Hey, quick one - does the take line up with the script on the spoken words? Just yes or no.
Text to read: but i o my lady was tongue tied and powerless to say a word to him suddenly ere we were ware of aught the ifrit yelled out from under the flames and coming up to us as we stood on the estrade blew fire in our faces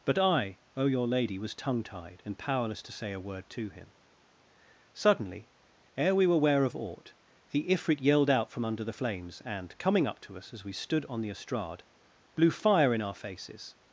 no